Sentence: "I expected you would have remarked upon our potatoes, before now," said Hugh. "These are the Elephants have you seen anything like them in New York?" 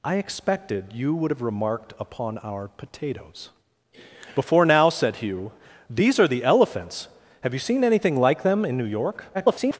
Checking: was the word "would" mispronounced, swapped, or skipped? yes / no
no